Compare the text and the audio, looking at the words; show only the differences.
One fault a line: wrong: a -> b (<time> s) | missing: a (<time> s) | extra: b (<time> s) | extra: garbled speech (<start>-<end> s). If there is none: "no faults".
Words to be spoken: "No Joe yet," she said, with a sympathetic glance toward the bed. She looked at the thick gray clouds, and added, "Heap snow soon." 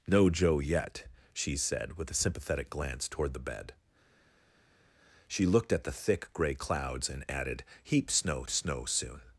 extra: snow (8.5 s)